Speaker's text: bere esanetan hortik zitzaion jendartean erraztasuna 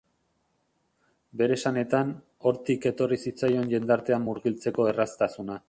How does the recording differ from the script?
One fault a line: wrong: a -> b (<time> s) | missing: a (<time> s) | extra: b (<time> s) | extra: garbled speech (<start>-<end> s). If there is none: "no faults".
extra: etorri (2.9 s)
extra: murgiltzeko (4.3 s)